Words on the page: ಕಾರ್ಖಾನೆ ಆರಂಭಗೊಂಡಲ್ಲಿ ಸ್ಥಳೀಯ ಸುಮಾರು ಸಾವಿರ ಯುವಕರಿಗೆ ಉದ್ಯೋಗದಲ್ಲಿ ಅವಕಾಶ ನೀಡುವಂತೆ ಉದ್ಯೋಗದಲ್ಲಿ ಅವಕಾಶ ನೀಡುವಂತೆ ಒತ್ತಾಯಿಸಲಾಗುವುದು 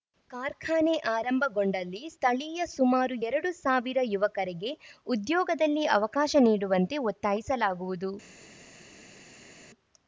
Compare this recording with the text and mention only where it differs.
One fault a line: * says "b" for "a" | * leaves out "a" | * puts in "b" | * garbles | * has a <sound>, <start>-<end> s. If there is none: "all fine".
* puts in "ಎರಡು"
* leaves out "ಉದ್ಯೋಗದಲ್ಲಿ ಅವಕಾಶ ನೀಡುವಂತೆ"